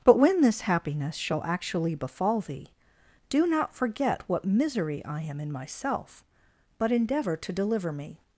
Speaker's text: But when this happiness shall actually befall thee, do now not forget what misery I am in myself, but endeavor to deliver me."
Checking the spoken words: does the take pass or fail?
fail